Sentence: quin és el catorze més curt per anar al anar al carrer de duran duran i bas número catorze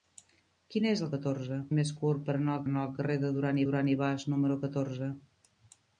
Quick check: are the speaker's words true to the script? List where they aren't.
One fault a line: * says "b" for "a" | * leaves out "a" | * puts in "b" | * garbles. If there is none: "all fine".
all fine